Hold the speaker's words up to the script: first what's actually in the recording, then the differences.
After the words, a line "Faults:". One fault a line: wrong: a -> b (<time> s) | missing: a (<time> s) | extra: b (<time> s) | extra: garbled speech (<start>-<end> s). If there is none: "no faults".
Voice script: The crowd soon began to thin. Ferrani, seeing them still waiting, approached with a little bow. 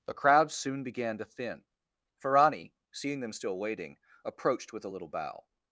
The crowd soon began to thin. Ferrani, seeing them still waiting, approached with a little bow.
Faults:
no faults